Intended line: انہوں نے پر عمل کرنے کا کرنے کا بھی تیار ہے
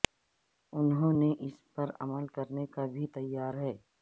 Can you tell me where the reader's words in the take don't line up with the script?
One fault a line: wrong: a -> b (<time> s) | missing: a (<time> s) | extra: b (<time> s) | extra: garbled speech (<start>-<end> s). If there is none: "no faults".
extra: اس (1.4 s)
missing: کرنے کا (2.8 s)